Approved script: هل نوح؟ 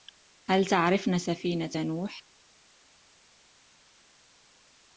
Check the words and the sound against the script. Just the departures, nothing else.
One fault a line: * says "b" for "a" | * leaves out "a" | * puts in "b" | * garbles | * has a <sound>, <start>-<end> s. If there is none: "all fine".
* puts in "تعرفن سفينة"